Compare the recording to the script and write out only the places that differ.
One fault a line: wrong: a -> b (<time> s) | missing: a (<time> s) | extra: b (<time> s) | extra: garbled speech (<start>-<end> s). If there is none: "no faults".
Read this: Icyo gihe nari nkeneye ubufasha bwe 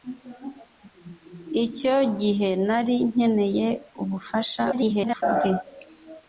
extra: garbled speech (4.7-5.2 s)